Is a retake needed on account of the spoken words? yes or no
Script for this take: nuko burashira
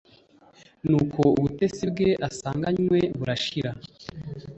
yes